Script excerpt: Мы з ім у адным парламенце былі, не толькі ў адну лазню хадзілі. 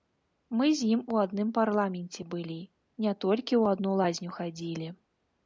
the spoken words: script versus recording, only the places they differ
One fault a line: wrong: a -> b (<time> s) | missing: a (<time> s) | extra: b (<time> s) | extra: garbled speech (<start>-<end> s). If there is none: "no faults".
no faults